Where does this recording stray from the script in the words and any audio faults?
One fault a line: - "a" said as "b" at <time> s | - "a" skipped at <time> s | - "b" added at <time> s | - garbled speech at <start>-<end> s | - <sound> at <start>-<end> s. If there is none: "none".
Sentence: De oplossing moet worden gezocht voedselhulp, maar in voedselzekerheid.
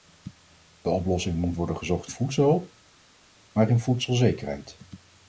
none